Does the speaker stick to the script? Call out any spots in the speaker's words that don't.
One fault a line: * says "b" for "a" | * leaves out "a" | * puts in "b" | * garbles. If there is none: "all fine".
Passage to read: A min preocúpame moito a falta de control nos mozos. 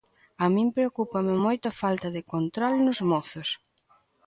all fine